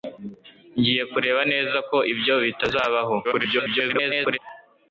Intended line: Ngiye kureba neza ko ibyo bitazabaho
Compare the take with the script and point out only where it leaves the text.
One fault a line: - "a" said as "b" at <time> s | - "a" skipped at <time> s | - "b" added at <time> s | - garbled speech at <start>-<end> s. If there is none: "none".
- garbled speech at 3.2-4.4 s